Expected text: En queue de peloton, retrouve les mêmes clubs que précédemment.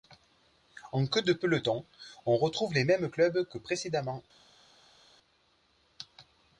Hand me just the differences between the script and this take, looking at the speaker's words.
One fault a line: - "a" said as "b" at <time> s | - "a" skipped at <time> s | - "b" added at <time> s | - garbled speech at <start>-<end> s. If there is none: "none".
- "on" added at 2.2 s